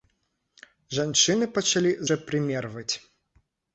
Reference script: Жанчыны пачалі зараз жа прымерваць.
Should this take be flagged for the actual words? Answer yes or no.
yes